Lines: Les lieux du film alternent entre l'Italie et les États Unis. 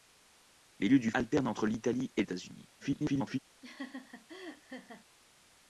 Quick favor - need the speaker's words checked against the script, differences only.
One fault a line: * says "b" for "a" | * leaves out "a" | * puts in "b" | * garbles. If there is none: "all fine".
* leaves out "film"
* leaves out "les"
* garbles